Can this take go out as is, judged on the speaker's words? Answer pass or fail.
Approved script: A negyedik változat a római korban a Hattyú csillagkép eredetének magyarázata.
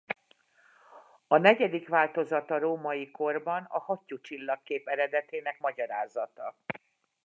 pass